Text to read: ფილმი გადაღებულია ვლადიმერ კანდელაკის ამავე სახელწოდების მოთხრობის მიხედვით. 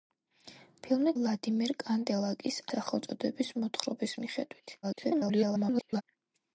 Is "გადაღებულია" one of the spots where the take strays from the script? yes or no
yes